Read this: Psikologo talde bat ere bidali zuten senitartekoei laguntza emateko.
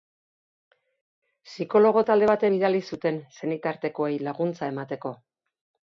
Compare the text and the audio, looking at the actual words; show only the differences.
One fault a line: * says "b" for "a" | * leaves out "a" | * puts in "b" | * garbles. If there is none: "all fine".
* leaves out "ere"